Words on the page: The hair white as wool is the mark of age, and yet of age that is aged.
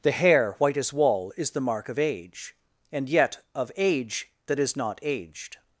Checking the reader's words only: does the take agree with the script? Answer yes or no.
no